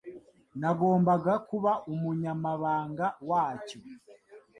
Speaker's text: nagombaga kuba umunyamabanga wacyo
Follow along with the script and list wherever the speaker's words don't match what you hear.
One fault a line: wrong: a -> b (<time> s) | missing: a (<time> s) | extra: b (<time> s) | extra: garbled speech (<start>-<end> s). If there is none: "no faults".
no faults